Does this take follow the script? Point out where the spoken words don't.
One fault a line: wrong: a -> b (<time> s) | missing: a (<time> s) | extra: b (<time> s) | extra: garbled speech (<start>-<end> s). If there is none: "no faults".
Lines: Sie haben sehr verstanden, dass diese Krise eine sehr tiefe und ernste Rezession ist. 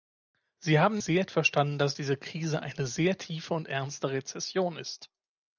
no faults